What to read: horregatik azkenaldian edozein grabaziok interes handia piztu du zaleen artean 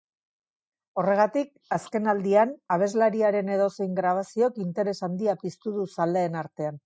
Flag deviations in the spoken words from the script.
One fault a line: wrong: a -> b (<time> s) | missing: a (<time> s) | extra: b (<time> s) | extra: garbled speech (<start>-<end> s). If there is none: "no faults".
extra: abeslariaren (2.8 s)